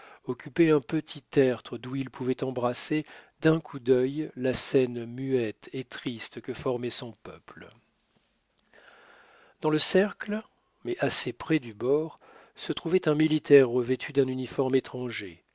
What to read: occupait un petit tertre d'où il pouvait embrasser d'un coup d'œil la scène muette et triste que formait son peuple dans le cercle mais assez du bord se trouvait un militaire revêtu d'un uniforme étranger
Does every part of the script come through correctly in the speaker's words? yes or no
no